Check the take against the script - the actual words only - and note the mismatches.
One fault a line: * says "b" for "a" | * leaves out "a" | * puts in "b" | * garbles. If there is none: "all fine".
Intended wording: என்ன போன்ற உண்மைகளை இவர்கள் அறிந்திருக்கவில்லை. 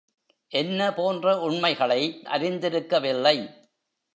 * leaves out "இவர்கள்"